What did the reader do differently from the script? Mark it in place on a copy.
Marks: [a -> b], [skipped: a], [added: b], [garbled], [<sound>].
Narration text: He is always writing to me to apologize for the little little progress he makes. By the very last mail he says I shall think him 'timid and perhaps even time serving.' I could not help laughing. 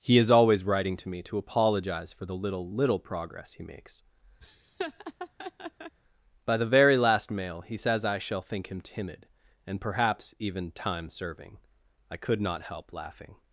He is always writing to me to apologize for the little little progress he makes. [laugh] By the very last mail he says I shall think him 'timid and perhaps even time serving.' I could not help laughing.